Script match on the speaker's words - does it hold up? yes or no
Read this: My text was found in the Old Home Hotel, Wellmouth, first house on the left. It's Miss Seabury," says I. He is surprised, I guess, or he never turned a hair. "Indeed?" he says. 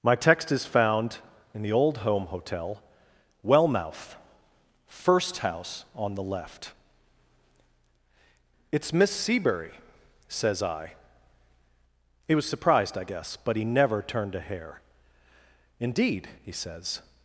no